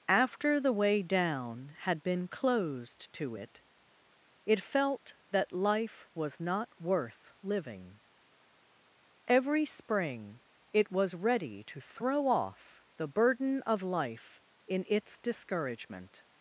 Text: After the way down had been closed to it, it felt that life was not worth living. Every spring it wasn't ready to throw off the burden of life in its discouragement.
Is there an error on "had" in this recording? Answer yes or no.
no